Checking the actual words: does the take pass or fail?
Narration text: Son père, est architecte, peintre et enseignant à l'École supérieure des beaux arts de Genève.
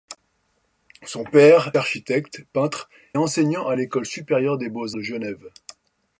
fail